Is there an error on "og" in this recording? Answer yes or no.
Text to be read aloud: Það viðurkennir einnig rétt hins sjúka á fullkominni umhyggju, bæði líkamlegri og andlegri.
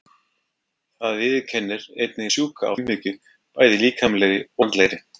yes